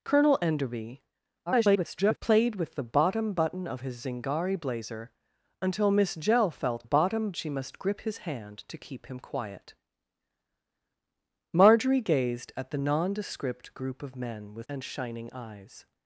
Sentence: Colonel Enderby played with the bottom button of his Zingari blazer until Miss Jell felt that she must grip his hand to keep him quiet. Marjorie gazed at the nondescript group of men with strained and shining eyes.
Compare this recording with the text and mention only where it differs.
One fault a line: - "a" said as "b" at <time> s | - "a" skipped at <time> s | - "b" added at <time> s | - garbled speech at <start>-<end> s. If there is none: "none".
- garbled speech at 1.5-2.2 s
- "that" said as "bottom" at 6.8 s
- "strained" skipped at 14.7 s